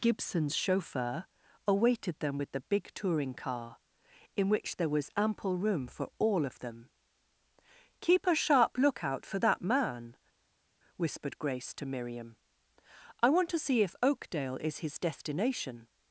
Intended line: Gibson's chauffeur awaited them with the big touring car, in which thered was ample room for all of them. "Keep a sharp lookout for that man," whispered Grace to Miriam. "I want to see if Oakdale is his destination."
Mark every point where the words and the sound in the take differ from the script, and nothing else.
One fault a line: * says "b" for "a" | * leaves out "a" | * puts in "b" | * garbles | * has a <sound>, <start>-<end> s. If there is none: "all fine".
* says "there" for "thered"